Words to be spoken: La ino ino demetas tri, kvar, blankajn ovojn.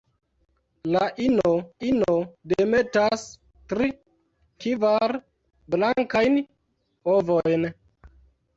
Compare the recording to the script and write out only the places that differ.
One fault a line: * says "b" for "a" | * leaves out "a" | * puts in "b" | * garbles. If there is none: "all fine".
all fine